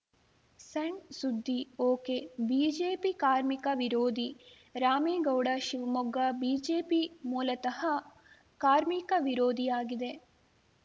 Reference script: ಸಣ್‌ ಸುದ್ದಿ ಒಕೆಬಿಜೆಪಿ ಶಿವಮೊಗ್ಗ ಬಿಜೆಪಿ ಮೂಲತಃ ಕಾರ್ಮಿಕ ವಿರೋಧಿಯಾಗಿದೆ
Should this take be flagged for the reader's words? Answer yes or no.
yes